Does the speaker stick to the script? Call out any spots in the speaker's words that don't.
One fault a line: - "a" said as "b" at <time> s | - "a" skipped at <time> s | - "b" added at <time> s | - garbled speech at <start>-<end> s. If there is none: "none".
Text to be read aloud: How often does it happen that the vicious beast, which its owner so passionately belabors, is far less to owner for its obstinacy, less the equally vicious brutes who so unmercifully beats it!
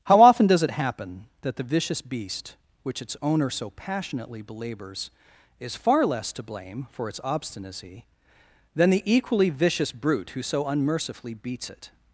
- "owner" said as "blame" at 6.4 s
- "less" said as "than" at 8.8 s
- "brutes" said as "brute" at 9.9 s